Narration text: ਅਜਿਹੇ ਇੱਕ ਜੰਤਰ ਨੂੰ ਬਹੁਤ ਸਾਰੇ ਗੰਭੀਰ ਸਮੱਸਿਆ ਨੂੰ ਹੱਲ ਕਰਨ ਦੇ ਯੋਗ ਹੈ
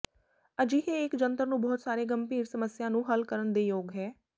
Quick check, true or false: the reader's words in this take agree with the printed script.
true